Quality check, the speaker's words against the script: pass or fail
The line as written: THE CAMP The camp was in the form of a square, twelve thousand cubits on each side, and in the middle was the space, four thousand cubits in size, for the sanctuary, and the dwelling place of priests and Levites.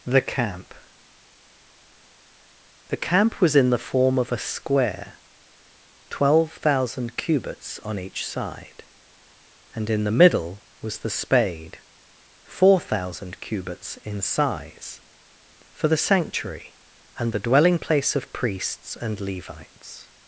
fail